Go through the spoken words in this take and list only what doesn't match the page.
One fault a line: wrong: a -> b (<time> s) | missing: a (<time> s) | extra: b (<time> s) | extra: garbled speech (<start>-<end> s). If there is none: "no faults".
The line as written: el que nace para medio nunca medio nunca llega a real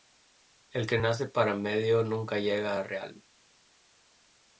missing: medio nunca (2.4 s)